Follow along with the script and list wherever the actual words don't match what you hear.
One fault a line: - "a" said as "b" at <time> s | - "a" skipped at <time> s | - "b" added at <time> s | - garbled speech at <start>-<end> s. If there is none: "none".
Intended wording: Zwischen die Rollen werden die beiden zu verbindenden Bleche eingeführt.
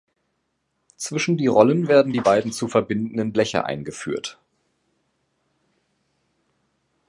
none